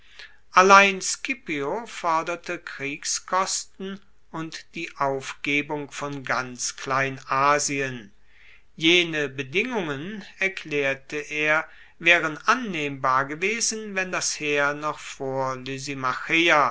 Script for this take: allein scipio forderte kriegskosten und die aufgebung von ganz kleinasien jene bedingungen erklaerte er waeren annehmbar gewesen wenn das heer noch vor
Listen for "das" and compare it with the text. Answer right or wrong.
right